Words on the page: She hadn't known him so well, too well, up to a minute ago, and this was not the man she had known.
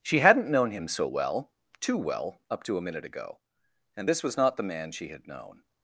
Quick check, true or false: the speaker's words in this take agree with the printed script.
true